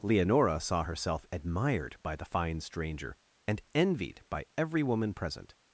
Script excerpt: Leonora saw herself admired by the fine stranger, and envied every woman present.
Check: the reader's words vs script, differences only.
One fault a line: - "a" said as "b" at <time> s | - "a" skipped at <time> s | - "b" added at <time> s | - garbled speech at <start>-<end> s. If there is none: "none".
- "by" added at 4.3 s